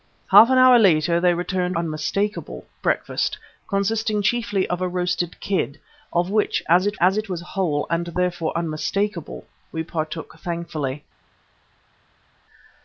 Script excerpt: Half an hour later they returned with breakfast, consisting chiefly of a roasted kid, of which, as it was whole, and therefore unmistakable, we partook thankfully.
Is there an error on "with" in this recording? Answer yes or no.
yes